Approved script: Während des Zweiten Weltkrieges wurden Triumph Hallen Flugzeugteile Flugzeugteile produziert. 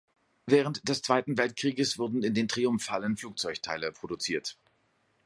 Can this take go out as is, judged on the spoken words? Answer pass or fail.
fail